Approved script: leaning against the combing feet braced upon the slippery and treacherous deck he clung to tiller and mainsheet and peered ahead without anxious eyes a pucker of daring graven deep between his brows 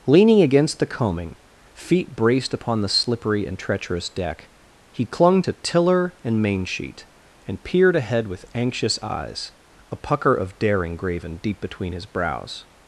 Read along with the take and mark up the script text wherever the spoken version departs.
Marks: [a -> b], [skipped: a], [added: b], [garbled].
leaning against the combing feet braced upon the slippery and treacherous deck he clung to tiller and mainsheet and peered ahead [without -> with] anxious eyes a pucker of daring graven deep between his brows